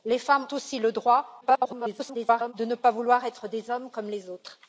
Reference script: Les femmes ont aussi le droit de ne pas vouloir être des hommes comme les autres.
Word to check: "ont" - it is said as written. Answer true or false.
false